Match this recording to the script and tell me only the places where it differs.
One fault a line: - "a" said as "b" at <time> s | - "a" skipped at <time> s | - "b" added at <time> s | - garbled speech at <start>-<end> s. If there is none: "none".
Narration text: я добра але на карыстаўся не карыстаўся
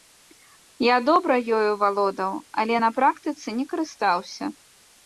- "ёю валодаў" added at 1.6 s
- "карыстаўся" said as "практыцы" at 3.0 s